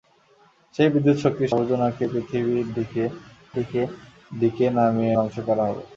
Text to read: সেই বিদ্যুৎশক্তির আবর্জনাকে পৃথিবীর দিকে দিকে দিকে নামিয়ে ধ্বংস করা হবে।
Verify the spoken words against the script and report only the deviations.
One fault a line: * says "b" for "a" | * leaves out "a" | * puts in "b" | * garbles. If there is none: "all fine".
all fine